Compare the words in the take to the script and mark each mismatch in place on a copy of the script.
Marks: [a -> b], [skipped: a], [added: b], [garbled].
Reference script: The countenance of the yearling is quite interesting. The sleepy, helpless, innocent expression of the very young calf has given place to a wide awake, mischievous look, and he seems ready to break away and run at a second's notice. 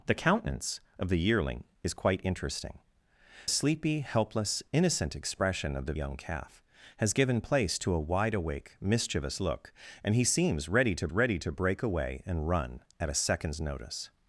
The countenance of the yearling is quite interesting. [skipped: The] sleepy, helpless, innocent expression of the [skipped: very] young calf has given place to a wide awake, mischievous look, and he seems ready to [added: ready to] break away and run at a second's notice.